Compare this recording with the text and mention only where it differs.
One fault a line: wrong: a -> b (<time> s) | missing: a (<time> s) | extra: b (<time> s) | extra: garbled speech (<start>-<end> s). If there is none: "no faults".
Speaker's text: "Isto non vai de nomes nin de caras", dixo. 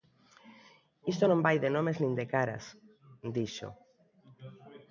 no faults